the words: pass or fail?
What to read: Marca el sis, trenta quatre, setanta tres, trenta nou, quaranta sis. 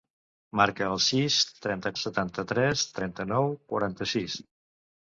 fail